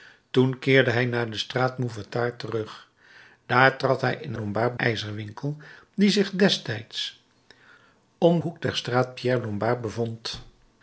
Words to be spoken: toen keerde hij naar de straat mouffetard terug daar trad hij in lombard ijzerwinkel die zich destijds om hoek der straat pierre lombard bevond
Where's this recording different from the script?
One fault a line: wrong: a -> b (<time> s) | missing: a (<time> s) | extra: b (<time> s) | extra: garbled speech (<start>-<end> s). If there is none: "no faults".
no faults